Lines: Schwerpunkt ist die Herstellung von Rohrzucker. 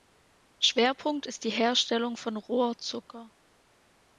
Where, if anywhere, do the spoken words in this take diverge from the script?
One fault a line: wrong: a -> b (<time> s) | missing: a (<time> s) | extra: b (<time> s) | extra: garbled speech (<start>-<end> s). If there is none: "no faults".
no faults